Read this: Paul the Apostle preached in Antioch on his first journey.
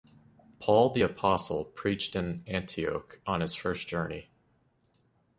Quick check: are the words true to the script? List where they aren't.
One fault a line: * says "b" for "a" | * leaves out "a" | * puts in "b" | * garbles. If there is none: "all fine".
all fine